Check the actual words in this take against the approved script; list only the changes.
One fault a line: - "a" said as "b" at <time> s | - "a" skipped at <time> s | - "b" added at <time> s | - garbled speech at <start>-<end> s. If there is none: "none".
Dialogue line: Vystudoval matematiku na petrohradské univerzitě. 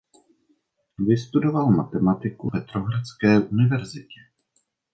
- "na" skipped at 2.5 s